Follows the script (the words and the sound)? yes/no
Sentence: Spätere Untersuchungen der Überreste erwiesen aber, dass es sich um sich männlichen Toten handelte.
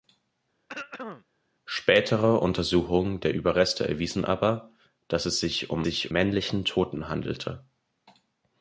no